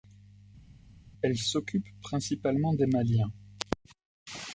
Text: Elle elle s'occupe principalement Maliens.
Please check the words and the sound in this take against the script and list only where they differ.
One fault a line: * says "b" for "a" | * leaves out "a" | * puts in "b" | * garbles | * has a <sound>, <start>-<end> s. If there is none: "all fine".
* leaves out "elle"
* puts in "des"